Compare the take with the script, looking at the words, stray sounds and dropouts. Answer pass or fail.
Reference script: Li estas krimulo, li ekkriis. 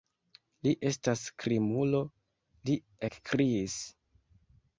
pass